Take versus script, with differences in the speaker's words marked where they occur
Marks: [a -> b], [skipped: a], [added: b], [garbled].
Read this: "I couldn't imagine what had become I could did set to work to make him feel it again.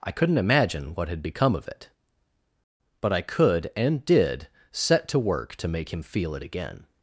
"I couldn't imagine what had become [added: of it but] I could [added: and] did set to work to make him feel it again.